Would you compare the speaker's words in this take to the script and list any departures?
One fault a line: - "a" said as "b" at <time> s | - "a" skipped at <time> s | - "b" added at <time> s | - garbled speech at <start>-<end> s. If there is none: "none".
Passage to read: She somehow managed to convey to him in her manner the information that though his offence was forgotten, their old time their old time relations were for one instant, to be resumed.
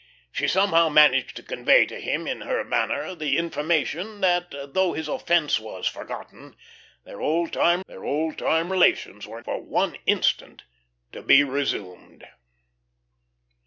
none